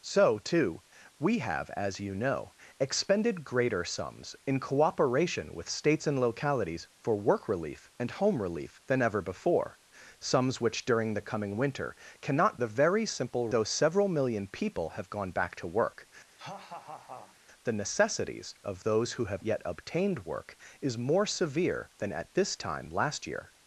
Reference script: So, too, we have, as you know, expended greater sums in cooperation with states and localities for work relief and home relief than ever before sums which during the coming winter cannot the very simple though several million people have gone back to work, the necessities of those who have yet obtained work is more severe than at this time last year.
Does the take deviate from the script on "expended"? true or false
false